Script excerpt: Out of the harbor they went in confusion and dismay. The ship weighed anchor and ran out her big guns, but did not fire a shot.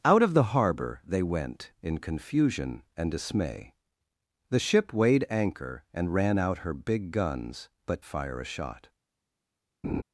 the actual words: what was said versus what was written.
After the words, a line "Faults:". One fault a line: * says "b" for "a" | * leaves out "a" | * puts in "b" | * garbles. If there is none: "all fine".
Out of the harbor they went in confusion and dismay. The ship weighed anchor and ran out her big guns, but fire a shot.
Faults:
* leaves out "did not"